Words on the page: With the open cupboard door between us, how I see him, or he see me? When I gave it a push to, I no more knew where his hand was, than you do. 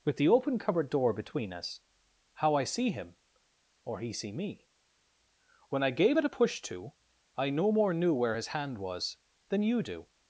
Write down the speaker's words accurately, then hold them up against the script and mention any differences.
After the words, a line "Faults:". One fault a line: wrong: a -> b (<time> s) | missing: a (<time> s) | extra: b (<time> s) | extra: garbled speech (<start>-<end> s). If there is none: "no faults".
With the open cupboard door between us, how I see him, or he see me? When I gave it a push to, I no more knew where his hand was, than you do.
Faults:
no faults